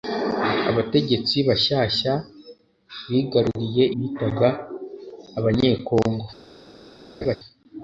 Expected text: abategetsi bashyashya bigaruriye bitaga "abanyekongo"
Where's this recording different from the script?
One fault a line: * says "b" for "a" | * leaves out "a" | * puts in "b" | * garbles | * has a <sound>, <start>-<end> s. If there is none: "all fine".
* has a laugh, 7.2-7.4 s